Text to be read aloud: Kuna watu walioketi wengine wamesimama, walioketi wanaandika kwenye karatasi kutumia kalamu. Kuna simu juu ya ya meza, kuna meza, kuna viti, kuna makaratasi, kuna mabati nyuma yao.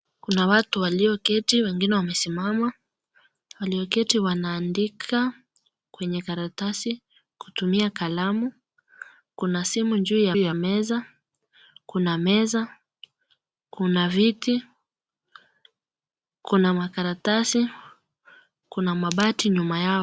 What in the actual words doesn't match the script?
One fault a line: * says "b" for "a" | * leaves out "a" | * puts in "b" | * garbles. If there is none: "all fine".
all fine